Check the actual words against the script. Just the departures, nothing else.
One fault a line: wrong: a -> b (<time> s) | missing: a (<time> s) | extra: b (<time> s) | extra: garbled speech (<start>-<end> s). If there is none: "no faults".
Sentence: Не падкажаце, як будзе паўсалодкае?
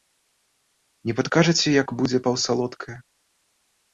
no faults